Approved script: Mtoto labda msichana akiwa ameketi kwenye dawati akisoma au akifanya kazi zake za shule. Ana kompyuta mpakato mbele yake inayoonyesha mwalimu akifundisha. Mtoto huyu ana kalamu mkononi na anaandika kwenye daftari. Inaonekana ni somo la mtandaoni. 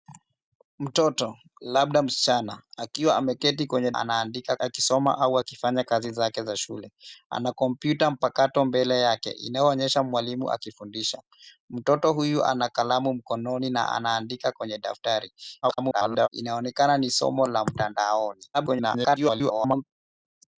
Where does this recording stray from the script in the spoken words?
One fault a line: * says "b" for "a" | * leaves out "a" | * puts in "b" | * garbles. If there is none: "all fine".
* says "anaandika" for "dawati"
* garbles
* garbles